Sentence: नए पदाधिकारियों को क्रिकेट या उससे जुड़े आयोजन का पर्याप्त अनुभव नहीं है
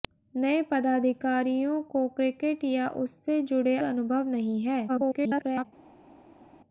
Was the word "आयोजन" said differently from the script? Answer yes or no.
yes